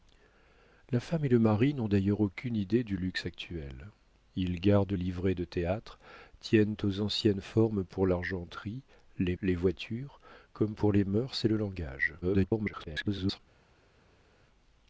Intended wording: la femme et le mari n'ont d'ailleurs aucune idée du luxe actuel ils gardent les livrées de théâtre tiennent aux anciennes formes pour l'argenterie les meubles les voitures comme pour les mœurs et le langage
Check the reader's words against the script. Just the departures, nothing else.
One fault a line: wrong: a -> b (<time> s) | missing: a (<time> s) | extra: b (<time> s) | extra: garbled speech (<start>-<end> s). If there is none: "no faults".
missing: les (4.9 s)
missing: meubles (9.4 s)
extra: garbled speech (12.2-13.4 s)